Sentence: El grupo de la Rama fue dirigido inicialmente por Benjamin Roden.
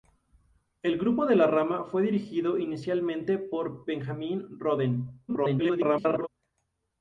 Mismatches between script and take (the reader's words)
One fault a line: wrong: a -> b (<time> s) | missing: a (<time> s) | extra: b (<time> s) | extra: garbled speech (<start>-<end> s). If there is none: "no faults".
extra: garbled speech (5.3-6.3 s)